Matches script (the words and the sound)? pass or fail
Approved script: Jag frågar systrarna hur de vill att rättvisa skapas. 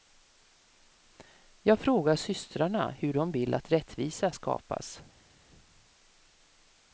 pass